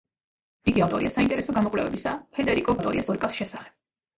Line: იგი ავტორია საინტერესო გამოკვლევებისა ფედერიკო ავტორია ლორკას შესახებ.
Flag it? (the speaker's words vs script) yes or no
no